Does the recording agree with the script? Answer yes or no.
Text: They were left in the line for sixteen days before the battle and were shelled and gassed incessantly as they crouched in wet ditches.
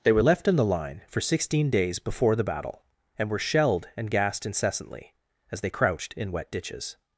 yes